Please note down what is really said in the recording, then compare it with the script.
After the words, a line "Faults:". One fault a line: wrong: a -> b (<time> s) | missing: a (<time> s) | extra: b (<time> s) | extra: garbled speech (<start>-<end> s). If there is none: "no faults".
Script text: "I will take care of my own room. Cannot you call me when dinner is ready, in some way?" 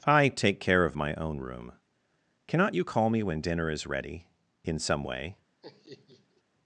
"I take care of my own room. Cannot you call me when dinner is ready, in some way?"
Faults:
missing: will (0.3 s)